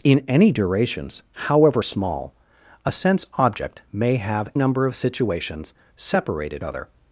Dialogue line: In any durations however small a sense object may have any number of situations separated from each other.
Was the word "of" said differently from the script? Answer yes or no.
no